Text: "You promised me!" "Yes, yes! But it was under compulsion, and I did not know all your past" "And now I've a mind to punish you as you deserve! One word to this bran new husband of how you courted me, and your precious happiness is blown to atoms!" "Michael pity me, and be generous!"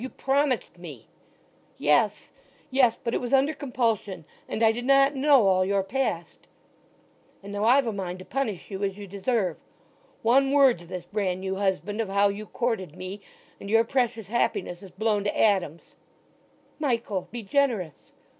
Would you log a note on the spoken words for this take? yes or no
yes